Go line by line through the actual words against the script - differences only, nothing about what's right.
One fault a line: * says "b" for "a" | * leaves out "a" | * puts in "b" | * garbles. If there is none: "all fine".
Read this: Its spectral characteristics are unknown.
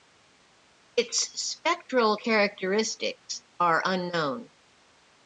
all fine